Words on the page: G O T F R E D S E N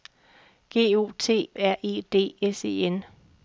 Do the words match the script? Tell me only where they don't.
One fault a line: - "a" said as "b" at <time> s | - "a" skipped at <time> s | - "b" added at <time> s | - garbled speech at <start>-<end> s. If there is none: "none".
- "F" skipped at 1.5 s